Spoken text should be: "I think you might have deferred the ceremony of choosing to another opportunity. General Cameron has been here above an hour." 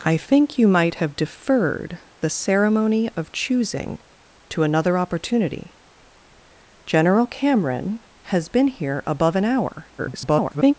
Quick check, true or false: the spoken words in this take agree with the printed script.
false